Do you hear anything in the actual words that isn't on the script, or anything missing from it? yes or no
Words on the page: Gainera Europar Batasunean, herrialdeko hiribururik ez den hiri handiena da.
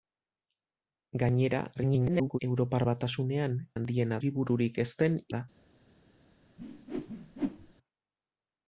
yes